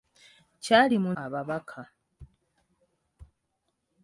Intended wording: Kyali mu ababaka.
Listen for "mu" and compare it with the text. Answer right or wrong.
right